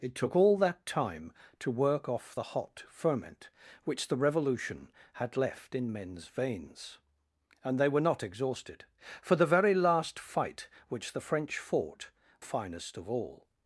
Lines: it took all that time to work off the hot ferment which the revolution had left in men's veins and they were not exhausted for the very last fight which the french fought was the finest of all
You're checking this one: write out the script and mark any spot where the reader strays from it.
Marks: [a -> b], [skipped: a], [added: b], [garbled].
it took all that time to work off the hot ferment which the revolution had left in men's veins and they were not exhausted for the very last fight which the french fought [skipped: was the] finest of all